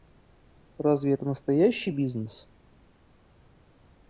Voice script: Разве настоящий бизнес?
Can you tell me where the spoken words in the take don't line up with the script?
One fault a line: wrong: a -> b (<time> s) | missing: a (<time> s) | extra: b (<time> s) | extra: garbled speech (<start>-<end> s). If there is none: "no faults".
extra: это (1.1 s)